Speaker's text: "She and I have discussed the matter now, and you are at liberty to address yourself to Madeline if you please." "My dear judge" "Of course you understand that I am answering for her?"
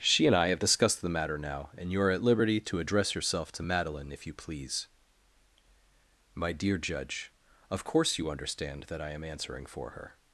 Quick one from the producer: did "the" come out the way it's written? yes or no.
yes